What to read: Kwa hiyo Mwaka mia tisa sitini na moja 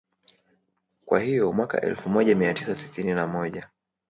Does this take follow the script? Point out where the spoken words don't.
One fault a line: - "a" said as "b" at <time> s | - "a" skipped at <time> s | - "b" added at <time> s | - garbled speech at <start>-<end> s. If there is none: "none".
- "elfu moja" added at 1.8 s